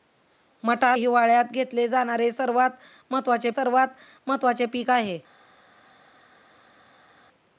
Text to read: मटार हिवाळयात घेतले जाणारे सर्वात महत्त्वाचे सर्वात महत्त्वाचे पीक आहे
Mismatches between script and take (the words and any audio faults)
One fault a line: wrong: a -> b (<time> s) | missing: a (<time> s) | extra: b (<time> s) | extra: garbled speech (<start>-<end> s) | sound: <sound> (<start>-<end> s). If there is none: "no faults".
no faults